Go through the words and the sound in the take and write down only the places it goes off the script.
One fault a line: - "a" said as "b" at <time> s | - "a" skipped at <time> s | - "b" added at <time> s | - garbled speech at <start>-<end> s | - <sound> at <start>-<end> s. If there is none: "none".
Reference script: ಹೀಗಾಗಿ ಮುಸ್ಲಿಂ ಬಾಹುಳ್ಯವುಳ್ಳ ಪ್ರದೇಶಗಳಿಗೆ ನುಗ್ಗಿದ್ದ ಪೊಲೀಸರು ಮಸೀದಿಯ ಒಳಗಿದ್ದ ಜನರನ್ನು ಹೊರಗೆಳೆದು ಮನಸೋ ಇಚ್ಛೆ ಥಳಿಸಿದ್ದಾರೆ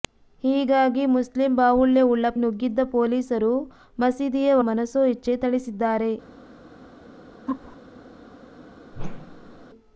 - "ಪ್ರದೇಶಗಳಿಗೆ" skipped at 2.3 s
- "ಒಳಗಿದ್ದ ಜನರನ್ನು ಹೊರಗೆಳೆದು" skipped at 4.6 s
- laugh at 7.5-7.8 s
- whoosh at 8.9-9.7 s